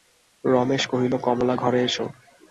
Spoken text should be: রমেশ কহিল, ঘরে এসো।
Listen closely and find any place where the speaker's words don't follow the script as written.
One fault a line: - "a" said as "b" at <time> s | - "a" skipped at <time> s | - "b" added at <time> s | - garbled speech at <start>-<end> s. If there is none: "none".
- "কমলা" added at 1.3 s